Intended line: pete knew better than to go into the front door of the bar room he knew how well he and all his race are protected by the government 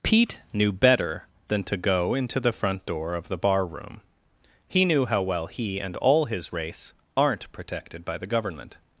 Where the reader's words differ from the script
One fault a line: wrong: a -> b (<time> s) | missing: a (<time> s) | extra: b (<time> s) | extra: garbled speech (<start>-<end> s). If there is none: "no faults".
wrong: are -> aren't (7.2 s)